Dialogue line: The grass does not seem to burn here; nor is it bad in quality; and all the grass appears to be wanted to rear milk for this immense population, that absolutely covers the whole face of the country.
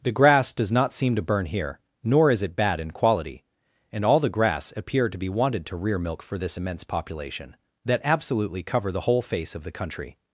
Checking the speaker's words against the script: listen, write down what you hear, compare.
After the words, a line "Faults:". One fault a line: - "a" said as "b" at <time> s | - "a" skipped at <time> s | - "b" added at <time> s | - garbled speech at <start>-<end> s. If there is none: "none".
The grass does not seem to burn here; nor is it bad in quality; and all the grass appear to be wanted to rear milk for this immense population, that absolutely cover the whole face of the country.
Faults:
- "appears" said as "appear" at 4.8 s
- "covers" said as "cover" at 8.6 s